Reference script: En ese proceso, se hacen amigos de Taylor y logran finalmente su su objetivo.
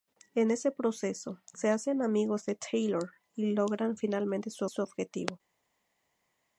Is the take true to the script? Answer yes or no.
yes